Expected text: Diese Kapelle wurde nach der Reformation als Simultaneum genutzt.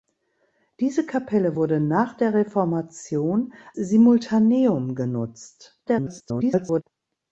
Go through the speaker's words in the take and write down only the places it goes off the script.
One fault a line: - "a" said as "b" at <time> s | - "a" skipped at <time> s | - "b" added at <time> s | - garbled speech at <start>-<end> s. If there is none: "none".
- "als" skipped at 3.5 s
- garbled speech at 5.9-6.8 s